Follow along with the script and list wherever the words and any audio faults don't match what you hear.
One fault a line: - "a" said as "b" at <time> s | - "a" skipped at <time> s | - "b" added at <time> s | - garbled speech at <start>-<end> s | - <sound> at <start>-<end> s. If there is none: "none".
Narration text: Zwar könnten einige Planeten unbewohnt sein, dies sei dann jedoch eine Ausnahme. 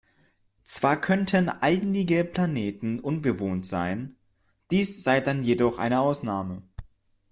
none